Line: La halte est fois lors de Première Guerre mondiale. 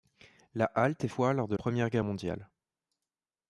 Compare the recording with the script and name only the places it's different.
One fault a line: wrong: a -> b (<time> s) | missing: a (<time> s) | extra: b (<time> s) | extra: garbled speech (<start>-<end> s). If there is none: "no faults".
no faults